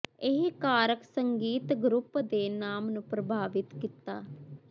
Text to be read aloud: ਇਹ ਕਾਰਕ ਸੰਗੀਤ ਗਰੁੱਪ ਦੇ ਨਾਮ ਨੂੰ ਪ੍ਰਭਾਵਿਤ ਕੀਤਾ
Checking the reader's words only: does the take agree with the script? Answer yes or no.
yes